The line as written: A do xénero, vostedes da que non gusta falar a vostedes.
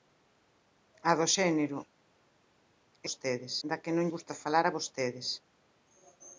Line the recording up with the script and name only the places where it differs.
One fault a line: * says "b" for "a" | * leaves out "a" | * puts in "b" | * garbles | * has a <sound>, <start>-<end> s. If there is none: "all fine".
all fine